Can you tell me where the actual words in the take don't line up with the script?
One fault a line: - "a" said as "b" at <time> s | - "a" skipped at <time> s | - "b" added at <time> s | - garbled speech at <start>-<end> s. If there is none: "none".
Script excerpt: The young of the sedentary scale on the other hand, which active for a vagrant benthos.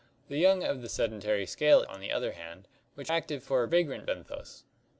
none